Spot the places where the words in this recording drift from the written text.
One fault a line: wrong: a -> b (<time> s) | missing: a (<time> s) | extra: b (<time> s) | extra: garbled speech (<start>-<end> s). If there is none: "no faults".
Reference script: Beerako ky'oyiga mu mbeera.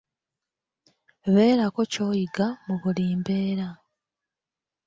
extra: buli (2.8 s)